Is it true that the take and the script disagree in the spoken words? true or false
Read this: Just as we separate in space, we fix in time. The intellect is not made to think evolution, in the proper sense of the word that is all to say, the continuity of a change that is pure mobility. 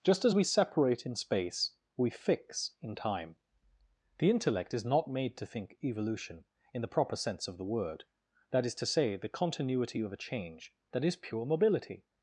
true